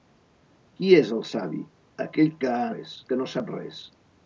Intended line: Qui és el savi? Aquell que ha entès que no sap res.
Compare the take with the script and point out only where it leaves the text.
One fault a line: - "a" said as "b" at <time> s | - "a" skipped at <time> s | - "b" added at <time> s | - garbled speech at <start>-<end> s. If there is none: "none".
- "entès" said as "res" at 2.7 s